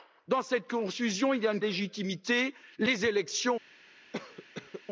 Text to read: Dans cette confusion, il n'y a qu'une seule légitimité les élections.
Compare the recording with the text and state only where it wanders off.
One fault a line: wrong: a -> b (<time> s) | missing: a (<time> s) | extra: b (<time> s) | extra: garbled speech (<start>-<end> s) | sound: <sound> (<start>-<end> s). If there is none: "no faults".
missing: qu'une seule (1.6 s)
sound: cough (4.1-4.8 s)